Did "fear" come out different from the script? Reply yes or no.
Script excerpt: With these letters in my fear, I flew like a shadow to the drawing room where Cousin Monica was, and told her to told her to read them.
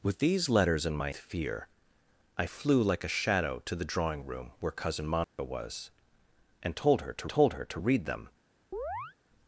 no